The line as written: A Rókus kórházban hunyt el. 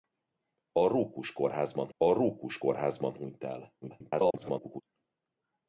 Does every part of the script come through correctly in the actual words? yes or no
no